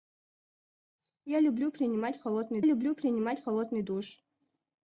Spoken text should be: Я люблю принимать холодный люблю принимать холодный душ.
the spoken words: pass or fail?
pass